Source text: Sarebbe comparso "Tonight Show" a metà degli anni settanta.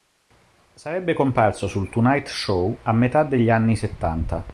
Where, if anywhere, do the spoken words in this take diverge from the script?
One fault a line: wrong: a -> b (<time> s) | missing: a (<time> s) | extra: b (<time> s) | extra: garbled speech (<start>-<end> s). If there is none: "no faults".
extra: sul (1.7 s)